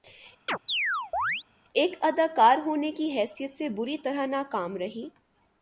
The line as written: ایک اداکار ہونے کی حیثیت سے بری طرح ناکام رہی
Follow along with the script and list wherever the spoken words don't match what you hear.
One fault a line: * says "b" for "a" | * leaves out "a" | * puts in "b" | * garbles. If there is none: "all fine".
all fine